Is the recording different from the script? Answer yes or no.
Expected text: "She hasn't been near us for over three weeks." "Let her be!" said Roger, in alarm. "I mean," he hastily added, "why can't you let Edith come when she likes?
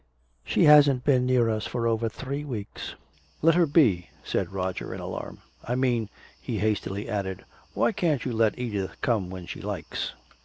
no